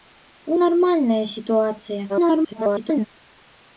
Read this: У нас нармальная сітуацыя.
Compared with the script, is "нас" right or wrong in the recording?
wrong